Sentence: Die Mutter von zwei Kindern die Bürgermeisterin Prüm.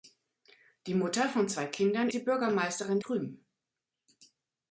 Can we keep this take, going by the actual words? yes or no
yes